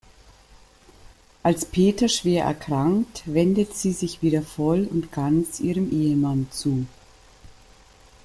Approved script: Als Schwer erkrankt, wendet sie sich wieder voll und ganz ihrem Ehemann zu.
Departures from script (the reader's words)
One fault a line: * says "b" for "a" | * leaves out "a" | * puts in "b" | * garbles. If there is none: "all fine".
* puts in "Peter"